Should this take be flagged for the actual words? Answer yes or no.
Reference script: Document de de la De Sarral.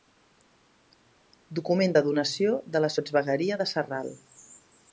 yes